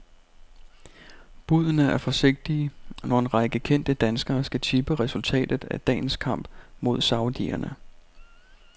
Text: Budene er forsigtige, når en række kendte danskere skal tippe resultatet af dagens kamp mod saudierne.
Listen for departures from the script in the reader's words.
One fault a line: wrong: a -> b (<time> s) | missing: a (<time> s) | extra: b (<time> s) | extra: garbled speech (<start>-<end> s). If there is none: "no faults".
no faults